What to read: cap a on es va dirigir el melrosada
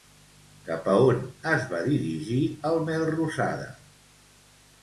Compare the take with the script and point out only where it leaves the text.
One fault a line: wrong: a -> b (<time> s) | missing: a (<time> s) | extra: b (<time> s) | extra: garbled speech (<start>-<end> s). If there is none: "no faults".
no faults